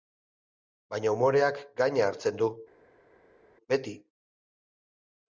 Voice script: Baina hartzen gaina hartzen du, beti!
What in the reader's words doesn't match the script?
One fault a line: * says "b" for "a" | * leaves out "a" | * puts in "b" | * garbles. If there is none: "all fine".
* says "umoreak" for "hartzen"